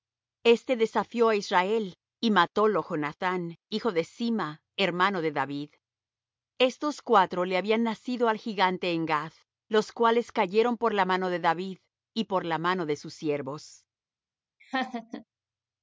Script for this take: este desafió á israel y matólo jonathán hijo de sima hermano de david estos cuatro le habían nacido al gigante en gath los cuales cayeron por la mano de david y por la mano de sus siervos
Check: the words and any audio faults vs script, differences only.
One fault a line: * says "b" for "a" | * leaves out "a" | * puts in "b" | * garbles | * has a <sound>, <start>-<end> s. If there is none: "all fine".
* has a laugh, 14.6-15.2 s